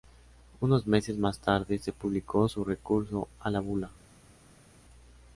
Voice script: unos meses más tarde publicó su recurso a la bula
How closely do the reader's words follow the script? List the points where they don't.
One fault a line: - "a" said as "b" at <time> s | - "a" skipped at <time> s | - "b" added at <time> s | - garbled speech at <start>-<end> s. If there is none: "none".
- "se" added at 1.8 s